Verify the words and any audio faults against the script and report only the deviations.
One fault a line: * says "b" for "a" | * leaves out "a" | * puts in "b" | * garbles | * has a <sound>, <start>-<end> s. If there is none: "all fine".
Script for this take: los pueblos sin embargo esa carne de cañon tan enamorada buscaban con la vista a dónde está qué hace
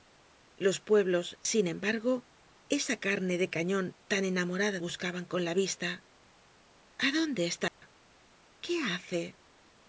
* has a dropout, 7.7-7.8 s